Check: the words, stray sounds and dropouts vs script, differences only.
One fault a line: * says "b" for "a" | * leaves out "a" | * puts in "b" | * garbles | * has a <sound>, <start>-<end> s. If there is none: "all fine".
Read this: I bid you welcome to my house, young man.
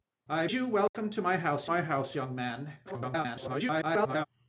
* leaves out "bid"
* has a dropout, 0.9-0.9 s
* puts in "my house"
* garbles